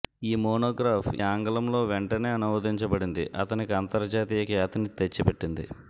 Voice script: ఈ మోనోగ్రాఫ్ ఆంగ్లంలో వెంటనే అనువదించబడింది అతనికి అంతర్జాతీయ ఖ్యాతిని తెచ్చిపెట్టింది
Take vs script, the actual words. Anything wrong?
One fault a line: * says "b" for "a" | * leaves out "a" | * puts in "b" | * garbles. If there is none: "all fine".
all fine